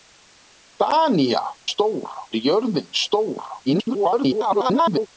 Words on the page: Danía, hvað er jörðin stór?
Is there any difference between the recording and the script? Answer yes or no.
yes